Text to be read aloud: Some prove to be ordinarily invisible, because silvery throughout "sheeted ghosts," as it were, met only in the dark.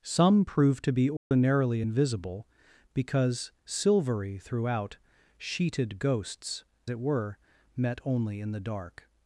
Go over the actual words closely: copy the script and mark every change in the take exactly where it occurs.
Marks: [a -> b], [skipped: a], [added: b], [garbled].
Some prove to be ordinarily invisible, because silvery throughout "sheeted ghosts," [skipped: as] it were, met only in the dark.